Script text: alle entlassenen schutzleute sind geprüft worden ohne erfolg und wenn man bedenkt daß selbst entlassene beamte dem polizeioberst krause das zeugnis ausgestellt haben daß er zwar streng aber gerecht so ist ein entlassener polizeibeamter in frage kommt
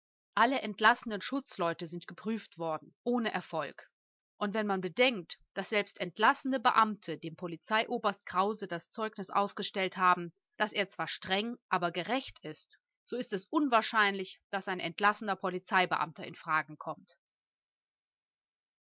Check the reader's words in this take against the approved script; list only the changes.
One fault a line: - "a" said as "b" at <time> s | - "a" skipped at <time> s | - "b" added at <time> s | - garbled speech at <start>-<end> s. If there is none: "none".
- "ist" added at 12.4 s
- "es unwahrscheinlich daß" added at 13.3 s